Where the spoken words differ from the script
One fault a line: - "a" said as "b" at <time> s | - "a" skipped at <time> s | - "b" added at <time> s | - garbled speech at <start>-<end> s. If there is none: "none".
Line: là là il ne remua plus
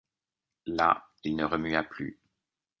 - "là" skipped at 1.1 s